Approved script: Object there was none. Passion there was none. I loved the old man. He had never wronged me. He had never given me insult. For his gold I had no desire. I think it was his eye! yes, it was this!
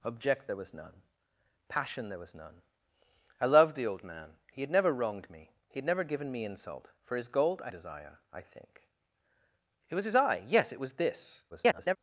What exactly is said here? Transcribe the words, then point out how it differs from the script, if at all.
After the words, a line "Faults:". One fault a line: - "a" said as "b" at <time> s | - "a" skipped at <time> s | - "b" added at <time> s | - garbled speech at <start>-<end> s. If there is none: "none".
Object there was none. Passion there was none. I loved the old man. He had never wronged me. He had never given me insult. For his gold I desire. I think it was his eye! yes, it was this! [garbled]
Faults:
- "had no" skipped at 7.7 s
- garbled speech at 11.5-12.0 s